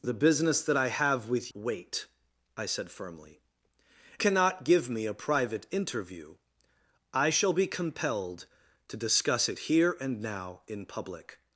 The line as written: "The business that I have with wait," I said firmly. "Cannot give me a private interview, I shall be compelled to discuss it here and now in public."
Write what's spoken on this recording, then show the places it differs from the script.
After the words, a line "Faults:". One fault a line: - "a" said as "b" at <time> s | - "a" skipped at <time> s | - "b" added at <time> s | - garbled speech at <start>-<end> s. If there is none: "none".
"The business that I have with wait," I said firmly. "Cannot give me a private interview, I shall be compelled to discuss it here and now in public."
Faults:
none